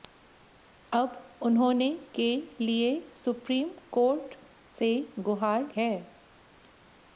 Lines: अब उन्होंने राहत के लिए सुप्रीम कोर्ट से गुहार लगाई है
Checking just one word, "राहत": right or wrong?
wrong